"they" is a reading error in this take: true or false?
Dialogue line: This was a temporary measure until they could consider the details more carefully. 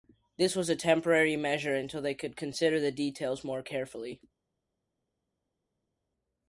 false